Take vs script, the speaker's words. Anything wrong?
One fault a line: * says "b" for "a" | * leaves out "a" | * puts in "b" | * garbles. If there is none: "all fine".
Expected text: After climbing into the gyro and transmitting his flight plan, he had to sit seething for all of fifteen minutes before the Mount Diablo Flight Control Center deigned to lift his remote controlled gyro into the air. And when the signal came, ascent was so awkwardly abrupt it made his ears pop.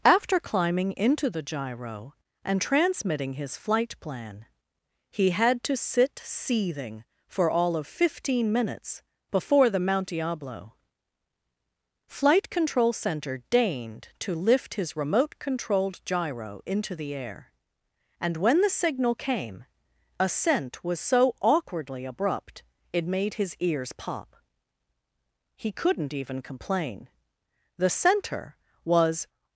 * puts in "He couldn't even complain The Center was"